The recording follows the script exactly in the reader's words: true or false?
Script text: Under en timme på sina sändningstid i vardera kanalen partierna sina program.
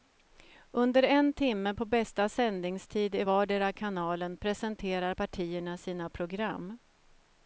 false